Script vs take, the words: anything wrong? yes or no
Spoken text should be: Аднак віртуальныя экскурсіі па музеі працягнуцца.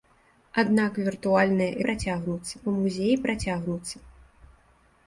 yes